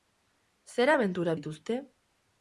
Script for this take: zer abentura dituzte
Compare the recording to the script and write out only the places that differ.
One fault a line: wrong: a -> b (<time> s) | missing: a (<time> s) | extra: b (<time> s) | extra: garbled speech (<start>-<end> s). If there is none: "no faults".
no faults